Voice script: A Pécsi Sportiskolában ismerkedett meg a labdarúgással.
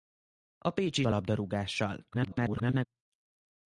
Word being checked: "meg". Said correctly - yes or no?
no